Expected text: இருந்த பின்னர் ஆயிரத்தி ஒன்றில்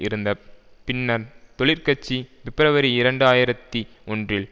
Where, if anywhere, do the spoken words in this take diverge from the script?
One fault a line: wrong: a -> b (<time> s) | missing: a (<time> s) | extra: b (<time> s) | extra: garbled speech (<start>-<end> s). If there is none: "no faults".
extra: தொழிற்கட்சி பிப்ரவரி இரண்டு (1.6 s)